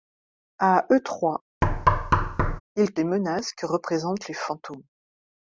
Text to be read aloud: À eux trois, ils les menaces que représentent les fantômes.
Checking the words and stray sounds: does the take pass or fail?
fail